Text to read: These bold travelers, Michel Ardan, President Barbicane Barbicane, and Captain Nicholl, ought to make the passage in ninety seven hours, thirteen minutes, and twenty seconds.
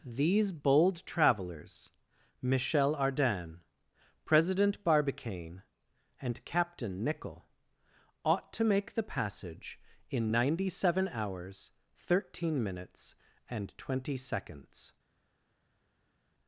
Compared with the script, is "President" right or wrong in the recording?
right